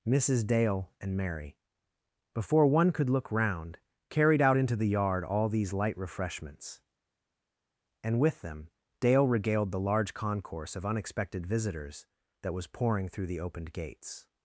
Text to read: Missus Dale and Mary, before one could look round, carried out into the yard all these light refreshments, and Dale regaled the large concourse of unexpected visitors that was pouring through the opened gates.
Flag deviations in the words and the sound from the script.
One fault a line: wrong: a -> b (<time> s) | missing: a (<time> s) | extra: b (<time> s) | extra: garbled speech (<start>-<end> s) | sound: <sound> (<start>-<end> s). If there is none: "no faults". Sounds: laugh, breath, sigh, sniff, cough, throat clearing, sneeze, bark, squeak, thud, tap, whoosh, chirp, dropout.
extra: with them (8.2 s)